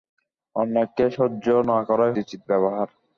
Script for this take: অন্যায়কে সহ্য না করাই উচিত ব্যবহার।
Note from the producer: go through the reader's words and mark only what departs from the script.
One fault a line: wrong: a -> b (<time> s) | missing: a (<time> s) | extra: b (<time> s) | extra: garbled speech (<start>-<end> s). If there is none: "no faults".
no faults